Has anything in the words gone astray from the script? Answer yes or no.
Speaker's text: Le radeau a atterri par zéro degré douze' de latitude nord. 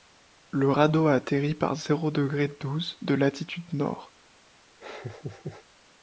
no